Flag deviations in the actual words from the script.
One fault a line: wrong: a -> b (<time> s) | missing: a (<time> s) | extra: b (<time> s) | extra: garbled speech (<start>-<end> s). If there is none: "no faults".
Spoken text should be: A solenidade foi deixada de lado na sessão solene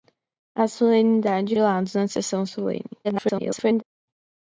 missing: foi deixada de (1.6 s)
extra: garbled speech (3.0-3.8 s)